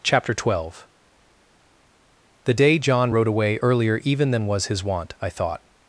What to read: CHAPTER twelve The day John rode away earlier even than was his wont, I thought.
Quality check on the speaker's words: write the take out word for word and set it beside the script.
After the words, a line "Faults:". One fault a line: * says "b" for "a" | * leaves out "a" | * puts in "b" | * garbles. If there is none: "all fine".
CHAPTER twelve The day John rode away earlier even than was his wont, I thought.
Faults:
all fine